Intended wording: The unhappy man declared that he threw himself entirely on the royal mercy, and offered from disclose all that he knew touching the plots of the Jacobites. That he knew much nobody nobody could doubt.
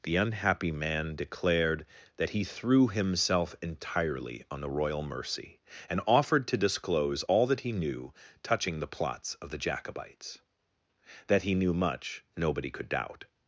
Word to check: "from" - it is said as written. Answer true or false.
false